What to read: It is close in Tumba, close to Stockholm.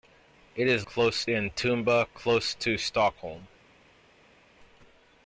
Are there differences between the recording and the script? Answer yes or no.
no